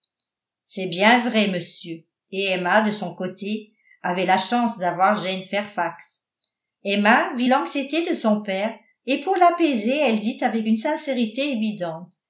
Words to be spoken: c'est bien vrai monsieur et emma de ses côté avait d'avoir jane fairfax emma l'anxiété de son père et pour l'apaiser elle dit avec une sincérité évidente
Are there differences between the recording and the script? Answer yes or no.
yes